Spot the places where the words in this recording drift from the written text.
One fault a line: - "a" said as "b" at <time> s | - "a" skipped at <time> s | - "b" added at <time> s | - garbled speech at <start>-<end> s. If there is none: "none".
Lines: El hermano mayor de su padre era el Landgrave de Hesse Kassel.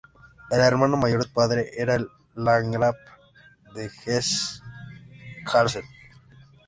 - "de" skipped at 1.2 s